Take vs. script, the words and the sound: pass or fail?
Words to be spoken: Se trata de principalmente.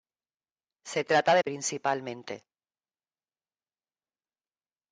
pass